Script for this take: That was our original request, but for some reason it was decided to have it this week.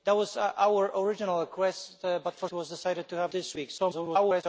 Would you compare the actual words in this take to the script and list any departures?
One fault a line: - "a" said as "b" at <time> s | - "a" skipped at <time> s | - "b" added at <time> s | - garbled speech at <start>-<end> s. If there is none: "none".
- "some reason it" skipped at 2.5 s
- "it" skipped at 3.3 s
- garbled speech at 3.8-4.4 s